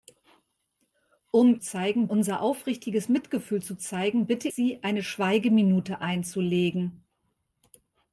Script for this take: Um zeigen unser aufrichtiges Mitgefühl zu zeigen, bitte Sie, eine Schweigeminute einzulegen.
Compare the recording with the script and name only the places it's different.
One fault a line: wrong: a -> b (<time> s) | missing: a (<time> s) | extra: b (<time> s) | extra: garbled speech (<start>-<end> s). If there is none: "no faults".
no faults